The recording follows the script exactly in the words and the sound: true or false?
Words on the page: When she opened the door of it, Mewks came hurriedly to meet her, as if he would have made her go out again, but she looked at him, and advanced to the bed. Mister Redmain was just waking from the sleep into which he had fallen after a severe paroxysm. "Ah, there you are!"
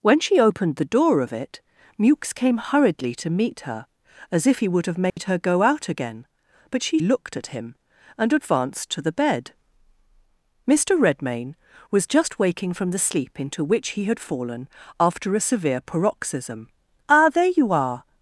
false